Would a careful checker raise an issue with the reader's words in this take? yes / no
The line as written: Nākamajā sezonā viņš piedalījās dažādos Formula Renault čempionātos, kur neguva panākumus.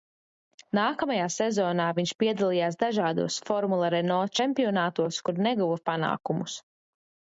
no